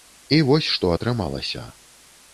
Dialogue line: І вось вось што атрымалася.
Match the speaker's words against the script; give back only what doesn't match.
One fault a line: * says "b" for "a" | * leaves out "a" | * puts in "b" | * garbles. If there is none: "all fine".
* leaves out "вось"